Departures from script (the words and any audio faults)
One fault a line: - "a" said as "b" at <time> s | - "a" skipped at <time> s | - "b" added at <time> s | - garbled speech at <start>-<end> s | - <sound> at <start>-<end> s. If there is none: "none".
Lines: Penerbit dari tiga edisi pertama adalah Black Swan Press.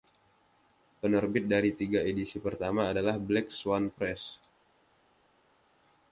none